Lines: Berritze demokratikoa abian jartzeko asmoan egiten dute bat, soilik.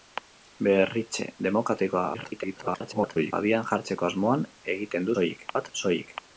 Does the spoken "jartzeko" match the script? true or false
true